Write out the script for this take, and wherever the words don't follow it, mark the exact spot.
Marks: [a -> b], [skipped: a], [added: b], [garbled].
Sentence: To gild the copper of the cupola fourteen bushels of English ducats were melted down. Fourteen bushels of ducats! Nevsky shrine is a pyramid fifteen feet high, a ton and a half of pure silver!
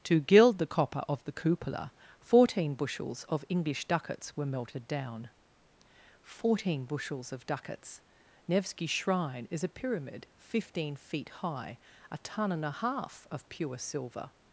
To gild the copper of the cupola fourteen bushels of English ducats were melted down. Fourteen bushels of ducats! Nevsky shrine is a pyramid fifteen feet high, a ton and a half of pure silver!